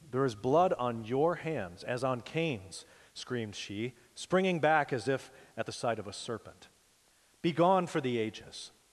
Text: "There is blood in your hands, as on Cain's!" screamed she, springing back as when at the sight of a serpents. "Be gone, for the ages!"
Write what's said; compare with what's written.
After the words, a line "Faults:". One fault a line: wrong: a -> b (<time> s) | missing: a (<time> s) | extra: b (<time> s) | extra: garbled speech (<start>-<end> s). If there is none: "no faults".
"There is blood on your hands, as on Cain's!" screamed she, springing back as if at the sight of a serpent. "Be gone, for the ages!"
Faults:
wrong: in -> on (0.7 s)
wrong: when -> if (5.0 s)
wrong: serpents -> serpent (6.1 s)